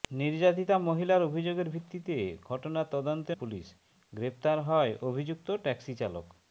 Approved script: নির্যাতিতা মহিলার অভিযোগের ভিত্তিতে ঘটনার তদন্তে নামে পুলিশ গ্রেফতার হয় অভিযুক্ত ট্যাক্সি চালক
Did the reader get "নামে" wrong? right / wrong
wrong